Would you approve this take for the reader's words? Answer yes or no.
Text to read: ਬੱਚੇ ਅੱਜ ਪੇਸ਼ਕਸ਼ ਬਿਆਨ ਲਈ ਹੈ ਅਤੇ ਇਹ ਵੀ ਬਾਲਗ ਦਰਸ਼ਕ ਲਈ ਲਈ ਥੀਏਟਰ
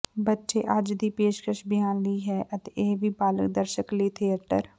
no